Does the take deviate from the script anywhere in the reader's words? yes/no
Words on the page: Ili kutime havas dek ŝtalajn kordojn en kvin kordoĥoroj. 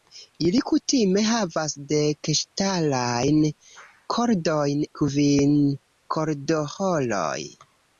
yes